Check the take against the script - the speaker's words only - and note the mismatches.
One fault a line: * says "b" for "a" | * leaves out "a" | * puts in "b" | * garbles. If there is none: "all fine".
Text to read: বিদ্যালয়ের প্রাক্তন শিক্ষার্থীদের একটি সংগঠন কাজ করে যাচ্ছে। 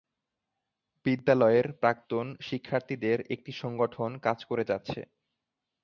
all fine